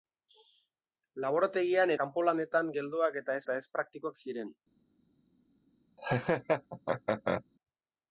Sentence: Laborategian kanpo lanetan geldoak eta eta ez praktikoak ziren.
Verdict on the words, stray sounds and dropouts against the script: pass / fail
fail